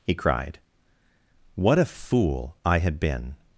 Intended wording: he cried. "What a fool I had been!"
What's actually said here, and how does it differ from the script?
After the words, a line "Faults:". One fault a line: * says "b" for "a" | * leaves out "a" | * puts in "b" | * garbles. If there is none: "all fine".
he cried. "What a fool I had been!"
Faults:
all fine